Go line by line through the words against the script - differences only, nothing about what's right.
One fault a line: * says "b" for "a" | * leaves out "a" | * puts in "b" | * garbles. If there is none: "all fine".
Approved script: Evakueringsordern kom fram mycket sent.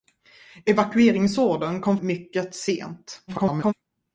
* leaves out "fram"
* garbles